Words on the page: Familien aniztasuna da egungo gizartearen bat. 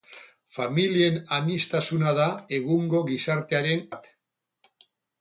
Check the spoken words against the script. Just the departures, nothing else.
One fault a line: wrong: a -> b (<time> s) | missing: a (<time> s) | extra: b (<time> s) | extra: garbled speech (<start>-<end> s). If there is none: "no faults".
no faults